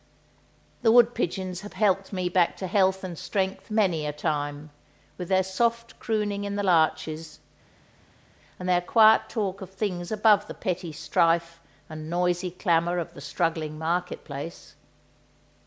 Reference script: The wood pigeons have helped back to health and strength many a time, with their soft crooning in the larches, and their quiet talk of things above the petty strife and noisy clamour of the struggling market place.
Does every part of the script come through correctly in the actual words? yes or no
no